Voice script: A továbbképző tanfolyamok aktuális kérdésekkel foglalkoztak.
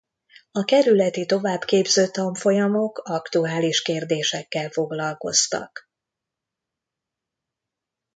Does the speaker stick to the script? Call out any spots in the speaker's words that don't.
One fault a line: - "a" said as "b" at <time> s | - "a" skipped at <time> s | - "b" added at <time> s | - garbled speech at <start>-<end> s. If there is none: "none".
- "kerületi" added at 0.6 s